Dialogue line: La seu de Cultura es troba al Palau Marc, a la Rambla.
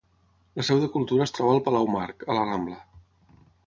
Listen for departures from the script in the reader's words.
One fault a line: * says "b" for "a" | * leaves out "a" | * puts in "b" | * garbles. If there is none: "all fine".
all fine